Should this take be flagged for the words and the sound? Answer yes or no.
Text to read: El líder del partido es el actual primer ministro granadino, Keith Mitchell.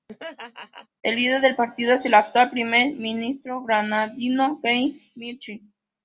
yes